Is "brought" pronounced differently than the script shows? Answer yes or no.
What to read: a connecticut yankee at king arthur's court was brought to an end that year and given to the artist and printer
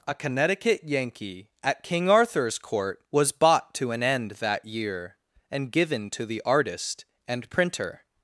yes